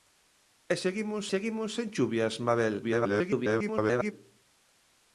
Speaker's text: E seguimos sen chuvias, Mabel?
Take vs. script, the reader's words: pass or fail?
fail